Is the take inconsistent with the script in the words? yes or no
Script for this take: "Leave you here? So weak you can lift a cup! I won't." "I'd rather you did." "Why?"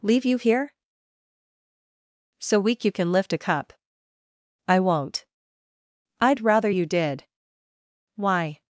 no